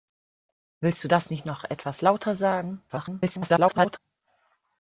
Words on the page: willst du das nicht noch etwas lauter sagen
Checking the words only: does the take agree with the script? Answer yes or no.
no